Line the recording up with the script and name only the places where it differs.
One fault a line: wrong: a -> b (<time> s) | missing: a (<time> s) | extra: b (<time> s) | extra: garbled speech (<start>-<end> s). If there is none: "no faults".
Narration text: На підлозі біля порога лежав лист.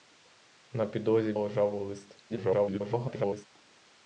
missing: біля порога (1.3 s)
extra: garbled speech (2.3-3.5 s)